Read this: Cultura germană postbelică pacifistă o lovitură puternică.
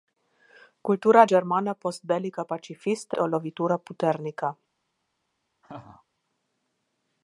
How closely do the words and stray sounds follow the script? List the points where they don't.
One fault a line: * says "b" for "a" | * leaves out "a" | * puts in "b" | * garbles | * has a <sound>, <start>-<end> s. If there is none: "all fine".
* has a laugh, 5.6-6.0 s